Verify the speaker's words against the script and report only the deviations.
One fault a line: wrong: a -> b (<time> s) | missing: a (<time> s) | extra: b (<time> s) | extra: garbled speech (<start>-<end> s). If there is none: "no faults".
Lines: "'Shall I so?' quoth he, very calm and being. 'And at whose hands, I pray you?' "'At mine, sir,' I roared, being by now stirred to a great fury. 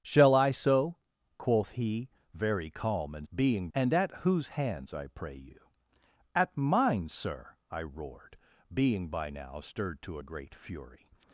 no faults